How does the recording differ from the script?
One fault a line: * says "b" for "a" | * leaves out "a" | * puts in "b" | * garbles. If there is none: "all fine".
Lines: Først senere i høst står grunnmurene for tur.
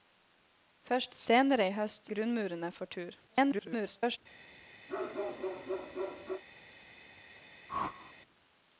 * leaves out "står"
* garbles